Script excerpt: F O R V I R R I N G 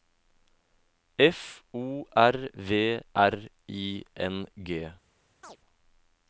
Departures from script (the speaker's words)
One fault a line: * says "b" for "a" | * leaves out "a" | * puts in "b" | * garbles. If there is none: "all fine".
* leaves out "I R"